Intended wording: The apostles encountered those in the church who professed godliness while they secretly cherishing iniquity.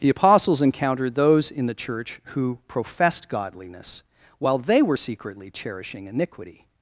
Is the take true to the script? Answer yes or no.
no